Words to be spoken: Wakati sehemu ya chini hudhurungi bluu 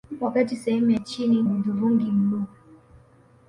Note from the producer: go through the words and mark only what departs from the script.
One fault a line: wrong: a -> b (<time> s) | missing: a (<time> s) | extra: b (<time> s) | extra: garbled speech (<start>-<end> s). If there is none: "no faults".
no faults